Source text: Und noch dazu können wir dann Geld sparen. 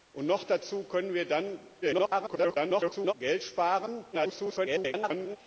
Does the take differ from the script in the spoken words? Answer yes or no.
yes